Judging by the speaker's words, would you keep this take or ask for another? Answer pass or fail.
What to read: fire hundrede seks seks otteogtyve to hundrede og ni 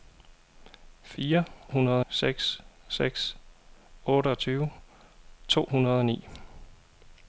pass